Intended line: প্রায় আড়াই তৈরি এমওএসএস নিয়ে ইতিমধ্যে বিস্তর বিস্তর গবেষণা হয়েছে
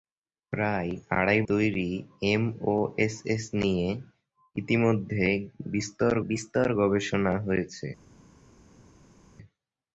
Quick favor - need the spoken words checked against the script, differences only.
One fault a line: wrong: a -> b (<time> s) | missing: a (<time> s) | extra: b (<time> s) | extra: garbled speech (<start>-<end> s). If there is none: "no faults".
no faults